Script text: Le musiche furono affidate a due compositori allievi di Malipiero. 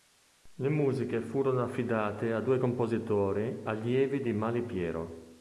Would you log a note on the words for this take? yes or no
no